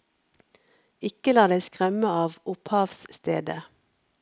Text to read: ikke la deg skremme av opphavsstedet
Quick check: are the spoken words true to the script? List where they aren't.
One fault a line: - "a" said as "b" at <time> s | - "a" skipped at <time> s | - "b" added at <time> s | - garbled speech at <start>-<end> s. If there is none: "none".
none